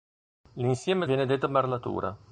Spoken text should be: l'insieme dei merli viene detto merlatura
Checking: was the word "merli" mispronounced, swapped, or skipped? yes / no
yes